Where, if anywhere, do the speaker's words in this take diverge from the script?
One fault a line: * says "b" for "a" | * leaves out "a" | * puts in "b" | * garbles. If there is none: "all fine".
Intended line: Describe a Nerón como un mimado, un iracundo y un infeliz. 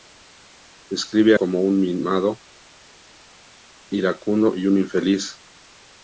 * leaves out "Nerón"
* leaves out "un"